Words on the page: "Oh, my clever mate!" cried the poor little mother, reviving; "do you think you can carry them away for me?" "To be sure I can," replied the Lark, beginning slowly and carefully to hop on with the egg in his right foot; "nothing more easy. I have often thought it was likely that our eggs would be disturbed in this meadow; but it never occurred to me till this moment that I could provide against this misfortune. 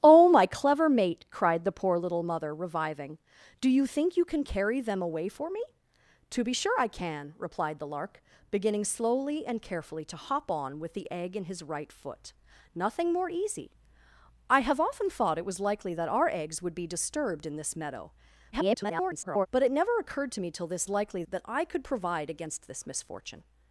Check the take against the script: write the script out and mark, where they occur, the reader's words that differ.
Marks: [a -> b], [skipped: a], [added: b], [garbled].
"Oh, my clever mate!" cried the poor little mother, reviving; "do you think you can carry them away for me?" "To be sure I can," replied the Lark, beginning slowly and carefully to hop on with the egg in his right foot; "nothing more easy. I have often thought it was likely that our eggs would be disturbed in this meadow; [garbled] but it never occurred to me till this [moment -> likely] that I could provide against this misfortune.